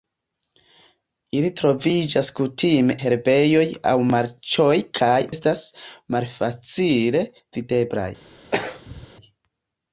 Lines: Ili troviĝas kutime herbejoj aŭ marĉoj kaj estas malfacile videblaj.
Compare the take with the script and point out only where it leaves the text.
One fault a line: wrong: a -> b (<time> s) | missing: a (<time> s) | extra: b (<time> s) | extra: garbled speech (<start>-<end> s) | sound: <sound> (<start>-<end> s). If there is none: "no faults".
sound: throat clearing (8.5-9.1 s)